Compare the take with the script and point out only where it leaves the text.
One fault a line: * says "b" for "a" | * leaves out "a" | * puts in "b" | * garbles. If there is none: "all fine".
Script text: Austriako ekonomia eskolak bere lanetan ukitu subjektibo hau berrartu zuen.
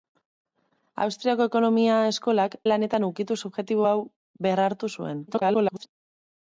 * leaves out "bere"
* garbles